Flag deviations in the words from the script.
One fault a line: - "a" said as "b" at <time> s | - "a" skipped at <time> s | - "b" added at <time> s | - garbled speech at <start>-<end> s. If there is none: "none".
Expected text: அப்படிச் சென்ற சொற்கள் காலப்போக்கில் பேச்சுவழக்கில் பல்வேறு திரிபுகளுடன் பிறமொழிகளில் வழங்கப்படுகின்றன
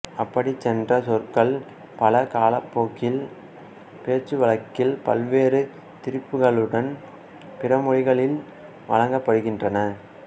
- "பல" added at 2.0 s